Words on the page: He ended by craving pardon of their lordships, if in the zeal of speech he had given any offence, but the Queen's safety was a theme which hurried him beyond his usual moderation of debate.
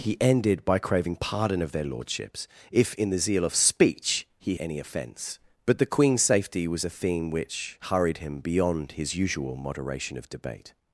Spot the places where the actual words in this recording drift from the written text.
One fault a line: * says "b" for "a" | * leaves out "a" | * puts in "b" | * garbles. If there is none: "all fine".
* leaves out "had given"